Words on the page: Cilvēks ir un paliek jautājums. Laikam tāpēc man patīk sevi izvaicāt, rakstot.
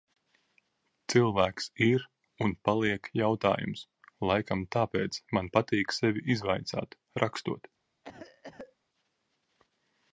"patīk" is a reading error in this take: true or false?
false